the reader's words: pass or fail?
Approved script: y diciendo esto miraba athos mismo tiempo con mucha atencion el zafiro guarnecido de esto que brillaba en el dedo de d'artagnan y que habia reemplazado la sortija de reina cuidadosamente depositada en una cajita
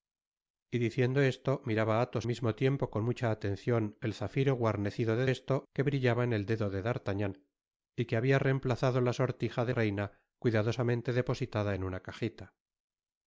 pass